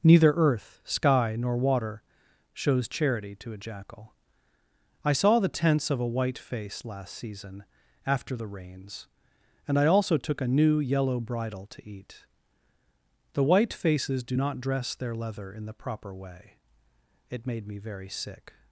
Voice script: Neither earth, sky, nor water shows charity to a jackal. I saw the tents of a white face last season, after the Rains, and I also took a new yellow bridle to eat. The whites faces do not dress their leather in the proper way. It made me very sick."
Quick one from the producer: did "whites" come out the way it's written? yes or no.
no